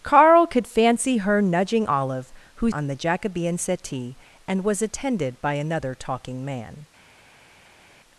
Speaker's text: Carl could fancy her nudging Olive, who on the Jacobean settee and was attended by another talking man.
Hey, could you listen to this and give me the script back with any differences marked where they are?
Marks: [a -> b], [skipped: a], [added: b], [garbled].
Carl could fancy her nudging Olive, who on the Jacobean settee and was attended by another talking man.